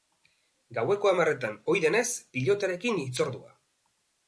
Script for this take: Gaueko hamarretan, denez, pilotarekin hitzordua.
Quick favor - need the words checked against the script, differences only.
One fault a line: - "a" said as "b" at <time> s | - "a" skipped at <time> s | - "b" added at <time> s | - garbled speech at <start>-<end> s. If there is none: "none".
- "ohi" added at 1.7 s